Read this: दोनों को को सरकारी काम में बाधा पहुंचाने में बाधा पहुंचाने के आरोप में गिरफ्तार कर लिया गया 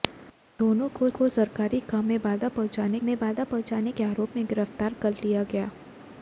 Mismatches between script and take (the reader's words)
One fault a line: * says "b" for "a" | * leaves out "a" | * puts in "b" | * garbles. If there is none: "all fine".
all fine